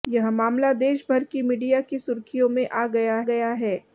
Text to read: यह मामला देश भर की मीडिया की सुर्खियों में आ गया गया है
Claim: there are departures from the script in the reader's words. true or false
false